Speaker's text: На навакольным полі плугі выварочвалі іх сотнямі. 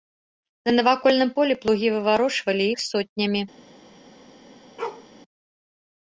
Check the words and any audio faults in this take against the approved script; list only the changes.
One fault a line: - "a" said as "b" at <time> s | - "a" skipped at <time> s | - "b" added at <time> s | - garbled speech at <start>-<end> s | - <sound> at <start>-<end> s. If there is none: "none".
- bark at 4.8-5.1 s